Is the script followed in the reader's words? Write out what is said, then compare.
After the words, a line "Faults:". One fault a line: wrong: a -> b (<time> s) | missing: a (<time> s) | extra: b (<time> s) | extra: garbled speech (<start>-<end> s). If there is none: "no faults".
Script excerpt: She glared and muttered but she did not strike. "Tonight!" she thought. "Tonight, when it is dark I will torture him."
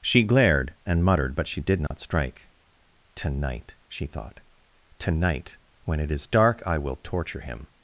She glared and muttered but she did not strike. "Tonight!" she thought. "Tonight, when it is dark I will torture him."
Faults:
no faults